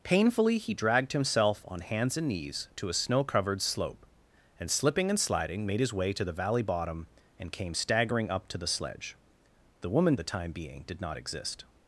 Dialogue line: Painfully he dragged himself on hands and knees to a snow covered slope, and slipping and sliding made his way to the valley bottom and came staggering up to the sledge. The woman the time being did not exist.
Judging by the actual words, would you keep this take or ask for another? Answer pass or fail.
pass